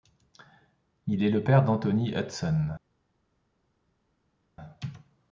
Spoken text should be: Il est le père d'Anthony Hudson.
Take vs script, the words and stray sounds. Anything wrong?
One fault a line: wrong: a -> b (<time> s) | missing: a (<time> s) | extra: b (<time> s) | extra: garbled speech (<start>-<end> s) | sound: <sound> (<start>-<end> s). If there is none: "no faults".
no faults